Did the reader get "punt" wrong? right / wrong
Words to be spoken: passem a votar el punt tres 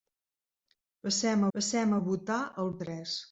wrong